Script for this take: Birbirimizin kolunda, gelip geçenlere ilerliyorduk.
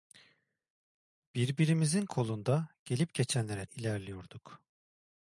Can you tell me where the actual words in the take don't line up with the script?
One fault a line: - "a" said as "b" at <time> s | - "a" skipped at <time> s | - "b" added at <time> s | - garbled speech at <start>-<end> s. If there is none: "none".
none